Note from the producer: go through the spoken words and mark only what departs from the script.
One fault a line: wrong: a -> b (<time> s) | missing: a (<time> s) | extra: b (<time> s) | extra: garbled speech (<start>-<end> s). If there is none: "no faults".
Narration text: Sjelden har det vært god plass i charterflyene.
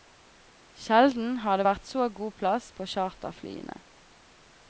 extra: så (1.9 s)
wrong: i -> på (2.8 s)